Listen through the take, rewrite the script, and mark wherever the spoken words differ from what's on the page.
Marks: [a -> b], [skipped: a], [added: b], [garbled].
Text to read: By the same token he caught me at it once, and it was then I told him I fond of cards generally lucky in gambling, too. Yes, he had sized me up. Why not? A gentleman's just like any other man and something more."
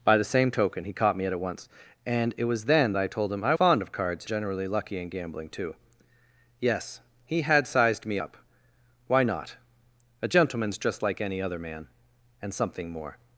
By the same token he caught me at it once, and it was then I told him I fond of cards generally lucky in gambling, too. Yes, he had sized me up. Why not? A gentleman's just like any other man and something more."